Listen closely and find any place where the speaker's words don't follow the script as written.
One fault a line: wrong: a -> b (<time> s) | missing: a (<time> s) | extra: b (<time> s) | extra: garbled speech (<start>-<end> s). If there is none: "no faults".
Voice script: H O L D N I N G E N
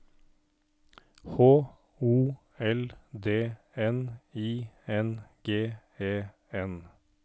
no faults